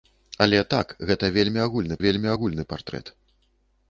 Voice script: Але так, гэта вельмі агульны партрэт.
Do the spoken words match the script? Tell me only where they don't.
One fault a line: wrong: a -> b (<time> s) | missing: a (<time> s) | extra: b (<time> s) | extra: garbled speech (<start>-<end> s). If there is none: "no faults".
extra: вельмі агульны (2.0 s)